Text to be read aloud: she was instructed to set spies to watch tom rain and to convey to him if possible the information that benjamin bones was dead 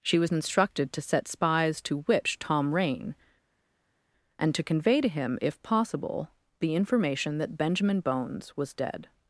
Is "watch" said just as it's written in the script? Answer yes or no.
no